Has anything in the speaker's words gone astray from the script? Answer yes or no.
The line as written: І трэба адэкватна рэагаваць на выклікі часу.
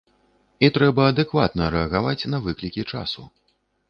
no